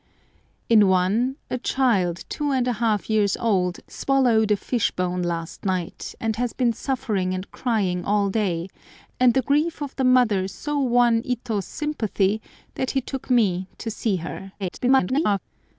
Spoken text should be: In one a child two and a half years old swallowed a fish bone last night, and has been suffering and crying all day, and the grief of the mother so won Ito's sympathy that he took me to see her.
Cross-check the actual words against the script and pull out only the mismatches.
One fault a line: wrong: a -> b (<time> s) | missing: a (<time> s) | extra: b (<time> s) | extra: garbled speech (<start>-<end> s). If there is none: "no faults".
extra: garbled speech (14.6-15.4 s)